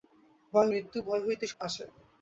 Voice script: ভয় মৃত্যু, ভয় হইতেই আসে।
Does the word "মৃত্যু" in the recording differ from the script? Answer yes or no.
no